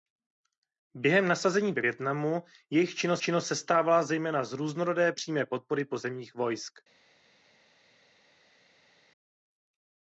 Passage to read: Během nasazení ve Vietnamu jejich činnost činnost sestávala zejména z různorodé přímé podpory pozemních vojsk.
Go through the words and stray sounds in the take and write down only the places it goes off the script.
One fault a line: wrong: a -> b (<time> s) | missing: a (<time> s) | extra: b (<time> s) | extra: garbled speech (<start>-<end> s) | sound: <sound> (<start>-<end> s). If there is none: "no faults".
no faults